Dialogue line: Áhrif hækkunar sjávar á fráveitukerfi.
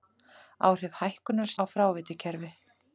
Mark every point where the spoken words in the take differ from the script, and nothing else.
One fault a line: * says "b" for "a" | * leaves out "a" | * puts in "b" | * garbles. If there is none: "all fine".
* leaves out "sjávar"